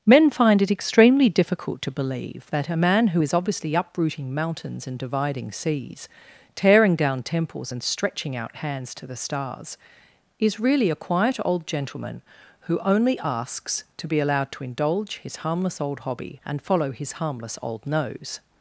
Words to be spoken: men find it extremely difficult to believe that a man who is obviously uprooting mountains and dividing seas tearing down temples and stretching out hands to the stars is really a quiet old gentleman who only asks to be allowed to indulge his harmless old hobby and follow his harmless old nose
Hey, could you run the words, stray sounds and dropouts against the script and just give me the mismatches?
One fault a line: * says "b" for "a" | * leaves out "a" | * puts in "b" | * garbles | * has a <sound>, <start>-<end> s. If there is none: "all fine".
all fine